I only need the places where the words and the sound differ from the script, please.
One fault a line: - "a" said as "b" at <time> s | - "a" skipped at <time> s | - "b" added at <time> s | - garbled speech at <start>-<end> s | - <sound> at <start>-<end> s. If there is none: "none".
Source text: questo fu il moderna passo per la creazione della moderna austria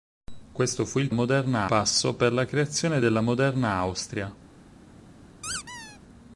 - squeak at 5.4-6.0 s